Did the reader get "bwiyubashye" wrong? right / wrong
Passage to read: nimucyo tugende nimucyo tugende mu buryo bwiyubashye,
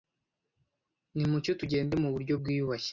right